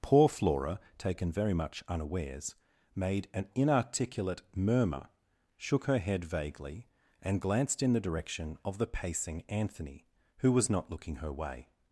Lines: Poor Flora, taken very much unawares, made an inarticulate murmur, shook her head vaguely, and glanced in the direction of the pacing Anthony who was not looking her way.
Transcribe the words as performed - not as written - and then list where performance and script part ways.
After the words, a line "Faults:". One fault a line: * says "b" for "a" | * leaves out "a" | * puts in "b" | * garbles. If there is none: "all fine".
Poor Flora, taken very much unawares, made an inarticulate murmur, shook her head vaguely, and glanced in the direction of the pacing Anthony who was not looking her way.
Faults:
all fine